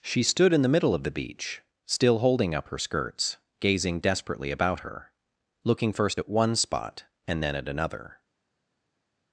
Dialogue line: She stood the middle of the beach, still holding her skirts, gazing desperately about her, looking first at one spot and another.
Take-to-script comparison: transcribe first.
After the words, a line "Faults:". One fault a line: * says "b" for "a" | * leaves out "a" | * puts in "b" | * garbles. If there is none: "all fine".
She stood in the middle of the beach, still holding up her skirts, gazing desperately about her, looking first at one spot and then at another.
Faults:
* puts in "in"
* puts in "up"
* puts in "then at"